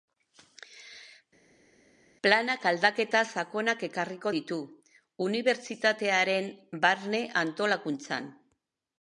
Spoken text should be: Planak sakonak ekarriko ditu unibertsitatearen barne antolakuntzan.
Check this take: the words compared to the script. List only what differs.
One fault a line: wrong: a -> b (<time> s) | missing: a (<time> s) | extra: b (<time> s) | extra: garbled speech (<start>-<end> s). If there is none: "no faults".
extra: aldaketa (2.7 s)